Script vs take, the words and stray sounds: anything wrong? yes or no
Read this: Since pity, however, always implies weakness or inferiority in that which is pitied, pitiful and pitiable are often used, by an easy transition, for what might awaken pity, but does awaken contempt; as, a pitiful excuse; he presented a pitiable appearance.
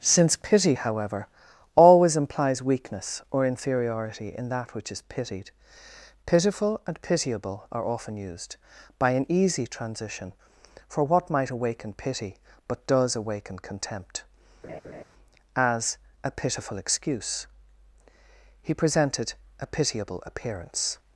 yes